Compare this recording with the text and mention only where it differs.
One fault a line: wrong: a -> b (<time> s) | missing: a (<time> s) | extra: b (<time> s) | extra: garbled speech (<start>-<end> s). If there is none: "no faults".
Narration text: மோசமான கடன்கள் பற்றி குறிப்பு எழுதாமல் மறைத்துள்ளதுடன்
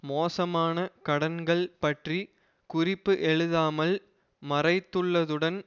no faults